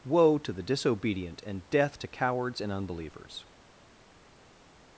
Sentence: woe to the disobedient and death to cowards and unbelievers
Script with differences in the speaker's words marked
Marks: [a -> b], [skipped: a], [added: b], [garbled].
woe to the disobedient and death to cowards and unbelievers